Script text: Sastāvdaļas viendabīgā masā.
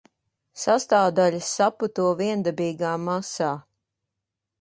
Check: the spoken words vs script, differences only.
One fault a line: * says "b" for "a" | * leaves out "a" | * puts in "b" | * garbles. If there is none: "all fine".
* puts in "saputo"